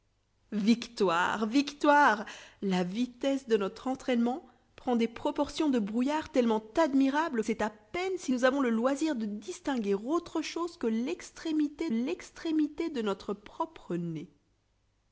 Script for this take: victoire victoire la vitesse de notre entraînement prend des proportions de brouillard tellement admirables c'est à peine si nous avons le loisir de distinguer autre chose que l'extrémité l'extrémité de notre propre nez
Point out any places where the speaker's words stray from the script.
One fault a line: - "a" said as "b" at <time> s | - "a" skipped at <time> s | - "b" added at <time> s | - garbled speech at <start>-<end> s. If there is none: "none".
none